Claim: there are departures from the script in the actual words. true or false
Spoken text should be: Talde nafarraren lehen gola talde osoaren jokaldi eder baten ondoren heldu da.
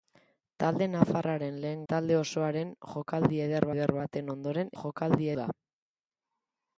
true